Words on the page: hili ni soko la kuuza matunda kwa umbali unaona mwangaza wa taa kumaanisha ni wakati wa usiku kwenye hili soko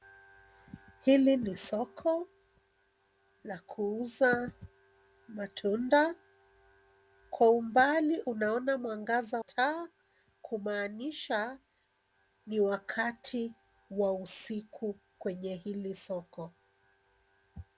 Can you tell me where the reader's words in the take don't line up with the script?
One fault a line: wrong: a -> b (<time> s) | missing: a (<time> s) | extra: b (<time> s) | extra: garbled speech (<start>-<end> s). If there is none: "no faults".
missing: wa (9.4 s)